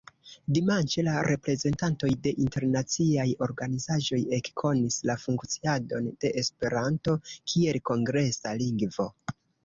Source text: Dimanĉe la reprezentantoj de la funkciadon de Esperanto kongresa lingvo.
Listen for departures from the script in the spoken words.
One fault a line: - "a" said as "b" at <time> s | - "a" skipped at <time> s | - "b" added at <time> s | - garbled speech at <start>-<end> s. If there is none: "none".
- "internaciaj organizaĵoj ekkonis" added at 2.5 s
- "kiel" added at 7.5 s